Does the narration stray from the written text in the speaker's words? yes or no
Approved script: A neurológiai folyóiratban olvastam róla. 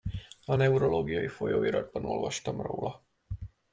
no